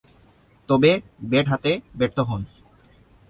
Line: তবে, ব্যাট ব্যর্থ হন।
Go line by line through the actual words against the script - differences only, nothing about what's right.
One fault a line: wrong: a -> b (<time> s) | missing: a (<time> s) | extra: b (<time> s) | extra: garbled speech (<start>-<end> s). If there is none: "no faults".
extra: হাতে (1.5 s)